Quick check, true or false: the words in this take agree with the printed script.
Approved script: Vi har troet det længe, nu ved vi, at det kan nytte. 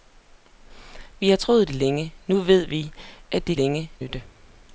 false